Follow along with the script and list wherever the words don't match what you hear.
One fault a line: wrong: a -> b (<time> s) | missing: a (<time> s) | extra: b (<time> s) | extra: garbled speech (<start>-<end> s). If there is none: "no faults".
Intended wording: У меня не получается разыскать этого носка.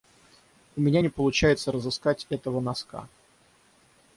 no faults